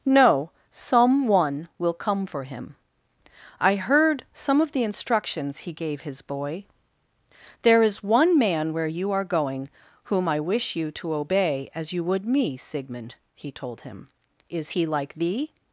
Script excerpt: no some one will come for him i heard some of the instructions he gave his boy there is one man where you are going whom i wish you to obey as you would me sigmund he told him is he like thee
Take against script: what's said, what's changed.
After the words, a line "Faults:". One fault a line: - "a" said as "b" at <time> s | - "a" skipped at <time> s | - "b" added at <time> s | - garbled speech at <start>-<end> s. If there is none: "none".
no some one will come for him i heard some of the instructions he gave his boy there is one man where you are going whom i wish you to obey as you would me sigmund he told him is he like thee
Faults:
none